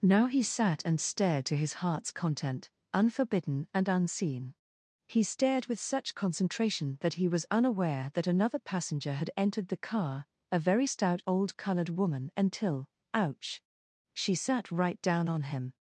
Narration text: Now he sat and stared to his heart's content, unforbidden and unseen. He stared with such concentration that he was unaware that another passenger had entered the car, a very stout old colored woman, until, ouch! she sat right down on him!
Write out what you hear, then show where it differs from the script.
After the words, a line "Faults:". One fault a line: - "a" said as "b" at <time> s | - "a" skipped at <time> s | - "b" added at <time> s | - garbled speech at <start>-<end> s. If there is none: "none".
Now he sat and stared to his heart's content, unforbidden and unseen. He stared with such concentration that he was unaware that another passenger had entered the car, a very stout old colored woman, until, ouch! she sat right down on him!
Faults:
none